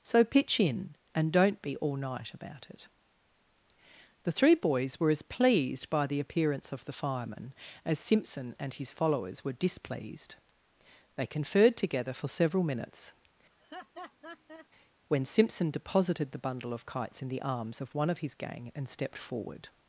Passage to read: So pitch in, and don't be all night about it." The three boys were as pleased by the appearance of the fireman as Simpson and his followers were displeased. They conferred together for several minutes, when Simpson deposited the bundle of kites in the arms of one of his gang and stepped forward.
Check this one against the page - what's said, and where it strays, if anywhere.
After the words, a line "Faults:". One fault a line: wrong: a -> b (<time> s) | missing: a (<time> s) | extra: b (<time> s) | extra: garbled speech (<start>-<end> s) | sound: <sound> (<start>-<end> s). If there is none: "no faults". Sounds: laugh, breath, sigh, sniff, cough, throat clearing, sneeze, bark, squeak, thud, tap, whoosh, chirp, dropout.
So pitch in, and don't be all night about it." The three boys were as pleased by the appearance of the fireman as Simpson and his followers were displeased. They conferred together for several minutes, when Simpson deposited the bundle of kites in the arms of one of his gang and stepped forward.
Faults:
sound: laugh (13.5-14.7 s)